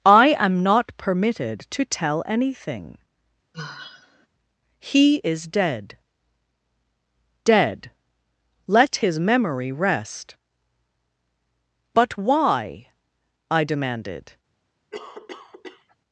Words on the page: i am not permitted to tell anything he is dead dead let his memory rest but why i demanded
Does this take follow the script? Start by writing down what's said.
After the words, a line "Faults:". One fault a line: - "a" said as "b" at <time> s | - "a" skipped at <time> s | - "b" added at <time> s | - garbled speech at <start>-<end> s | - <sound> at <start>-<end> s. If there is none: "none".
i am not permitted to tell anything he is dead dead let his memory rest but why i demanded
Faults:
- sigh at 3.5-4.3 s
- cough at 14.9-16.0 s